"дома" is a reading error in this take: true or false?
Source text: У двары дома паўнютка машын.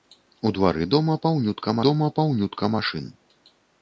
false